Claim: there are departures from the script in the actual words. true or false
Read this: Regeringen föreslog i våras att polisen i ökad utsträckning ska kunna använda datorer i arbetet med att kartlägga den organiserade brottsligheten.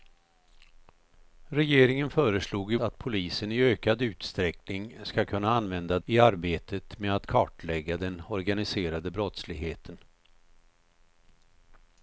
true